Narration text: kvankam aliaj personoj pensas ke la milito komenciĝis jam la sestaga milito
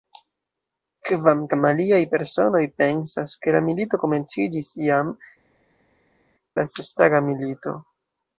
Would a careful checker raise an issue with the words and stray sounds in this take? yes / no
no